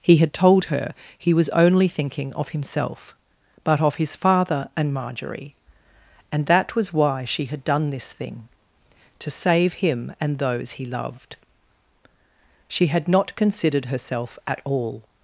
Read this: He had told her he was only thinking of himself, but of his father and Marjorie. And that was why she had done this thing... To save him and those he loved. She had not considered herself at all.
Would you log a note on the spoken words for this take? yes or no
no